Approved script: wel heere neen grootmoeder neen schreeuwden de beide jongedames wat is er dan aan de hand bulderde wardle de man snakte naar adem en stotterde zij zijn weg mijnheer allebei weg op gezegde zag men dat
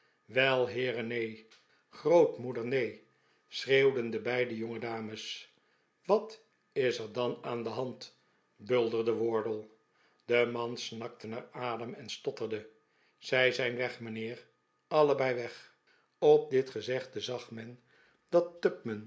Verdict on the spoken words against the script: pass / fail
fail